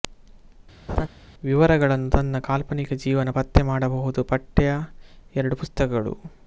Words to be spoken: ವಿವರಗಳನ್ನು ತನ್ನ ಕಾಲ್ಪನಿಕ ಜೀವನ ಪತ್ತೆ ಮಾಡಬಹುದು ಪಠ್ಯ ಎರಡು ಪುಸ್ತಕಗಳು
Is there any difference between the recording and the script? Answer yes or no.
no